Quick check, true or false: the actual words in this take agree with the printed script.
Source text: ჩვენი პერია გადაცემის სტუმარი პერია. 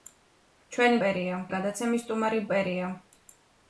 true